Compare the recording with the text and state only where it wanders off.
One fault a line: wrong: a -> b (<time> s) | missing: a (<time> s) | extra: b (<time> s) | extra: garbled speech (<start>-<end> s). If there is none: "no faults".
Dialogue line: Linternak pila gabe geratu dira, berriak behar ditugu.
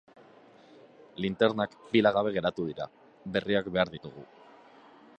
no faults